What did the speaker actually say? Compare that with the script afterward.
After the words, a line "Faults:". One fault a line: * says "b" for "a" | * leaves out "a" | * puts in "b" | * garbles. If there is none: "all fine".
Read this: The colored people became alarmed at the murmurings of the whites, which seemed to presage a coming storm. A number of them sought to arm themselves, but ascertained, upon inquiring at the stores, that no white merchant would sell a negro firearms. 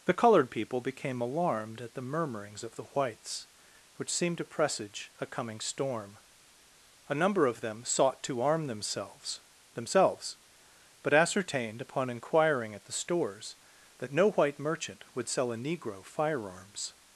The colored people became alarmed at the murmurings of the whites, which seemed to presage a coming storm. A number of them sought to arm themselves themselves, but ascertained, upon inquiring at the stores, that no white merchant would sell a negro firearms.
Faults:
* puts in "themselves"